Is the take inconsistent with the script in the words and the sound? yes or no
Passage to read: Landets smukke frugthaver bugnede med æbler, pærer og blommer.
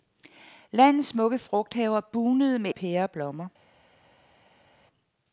yes